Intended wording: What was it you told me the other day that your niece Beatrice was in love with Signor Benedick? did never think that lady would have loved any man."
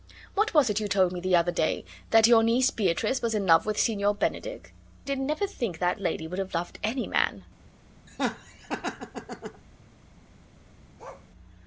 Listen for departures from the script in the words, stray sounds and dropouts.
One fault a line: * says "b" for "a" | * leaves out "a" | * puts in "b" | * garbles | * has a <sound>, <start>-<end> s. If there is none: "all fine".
* has a laugh, 8.1-9.6 s
* has a bark, 11.0-11.3 s